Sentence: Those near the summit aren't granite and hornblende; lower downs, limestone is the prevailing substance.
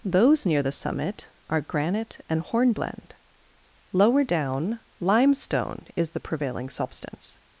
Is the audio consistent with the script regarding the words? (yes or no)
no